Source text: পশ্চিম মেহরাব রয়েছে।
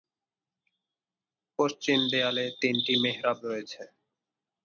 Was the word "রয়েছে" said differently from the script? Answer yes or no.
no